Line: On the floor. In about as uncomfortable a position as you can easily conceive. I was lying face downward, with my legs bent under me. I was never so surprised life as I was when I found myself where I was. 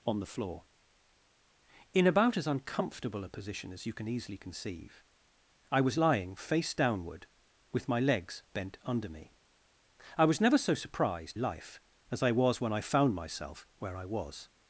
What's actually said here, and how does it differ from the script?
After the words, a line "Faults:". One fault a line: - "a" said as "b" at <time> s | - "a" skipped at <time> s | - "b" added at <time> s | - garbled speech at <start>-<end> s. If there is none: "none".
On the floor. In about as uncomfortable a position as you can easily conceive. I was lying face downward, with my legs bent under me. I was never so surprised life as I was when I found myself where I was.
Faults:
none